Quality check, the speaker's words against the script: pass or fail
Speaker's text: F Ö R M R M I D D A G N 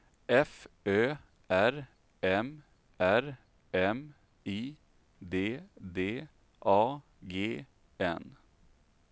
pass